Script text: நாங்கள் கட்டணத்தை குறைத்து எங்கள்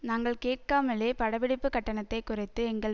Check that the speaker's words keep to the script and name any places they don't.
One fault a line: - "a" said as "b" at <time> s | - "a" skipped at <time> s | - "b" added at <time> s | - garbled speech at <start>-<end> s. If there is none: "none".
- "கேட்காமலே படப்பிடிப்பு" added at 0.4 s